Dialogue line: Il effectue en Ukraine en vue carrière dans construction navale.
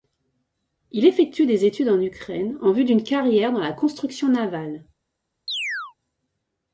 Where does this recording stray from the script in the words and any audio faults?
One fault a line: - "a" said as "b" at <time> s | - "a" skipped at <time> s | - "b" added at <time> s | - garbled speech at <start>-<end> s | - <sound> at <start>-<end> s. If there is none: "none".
- "des études" added at 1.4 s
- "d'une" added at 2.9 s
- "la" added at 3.6 s
- chirp at 5.5-5.9 s